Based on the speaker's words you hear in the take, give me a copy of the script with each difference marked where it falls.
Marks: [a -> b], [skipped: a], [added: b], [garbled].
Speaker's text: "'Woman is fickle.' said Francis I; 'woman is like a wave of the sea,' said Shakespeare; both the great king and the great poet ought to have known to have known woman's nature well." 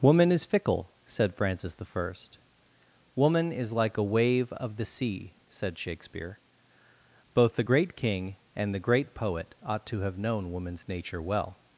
"'Woman is fickle.' said Francis I; 'woman is like a wave of the sea,' said Shakespeare; both the great king and the great poet ought to have known [skipped: to have known] woman's nature well."